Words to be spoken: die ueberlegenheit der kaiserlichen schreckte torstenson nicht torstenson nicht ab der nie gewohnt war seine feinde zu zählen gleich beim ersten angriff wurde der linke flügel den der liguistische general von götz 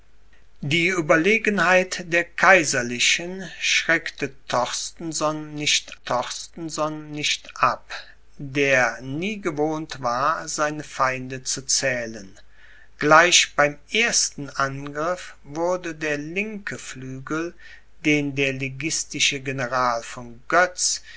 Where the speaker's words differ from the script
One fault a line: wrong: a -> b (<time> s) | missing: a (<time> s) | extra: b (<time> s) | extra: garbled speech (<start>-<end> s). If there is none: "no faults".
no faults